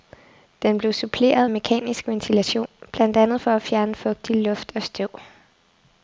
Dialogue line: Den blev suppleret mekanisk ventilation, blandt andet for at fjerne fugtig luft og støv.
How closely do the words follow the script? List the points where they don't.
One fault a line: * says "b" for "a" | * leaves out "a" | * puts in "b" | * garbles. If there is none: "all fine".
all fine